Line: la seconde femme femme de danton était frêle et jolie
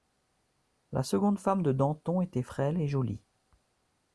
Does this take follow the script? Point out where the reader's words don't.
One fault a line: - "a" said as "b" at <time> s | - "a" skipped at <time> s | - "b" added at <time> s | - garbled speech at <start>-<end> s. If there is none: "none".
- "femme" skipped at 1.6 s